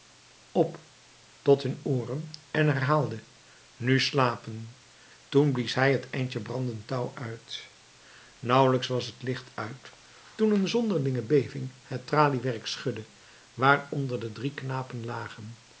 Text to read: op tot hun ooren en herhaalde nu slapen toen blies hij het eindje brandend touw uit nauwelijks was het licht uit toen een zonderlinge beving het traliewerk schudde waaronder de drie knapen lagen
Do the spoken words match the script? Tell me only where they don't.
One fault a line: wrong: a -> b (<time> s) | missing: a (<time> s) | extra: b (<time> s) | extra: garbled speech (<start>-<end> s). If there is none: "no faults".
no faults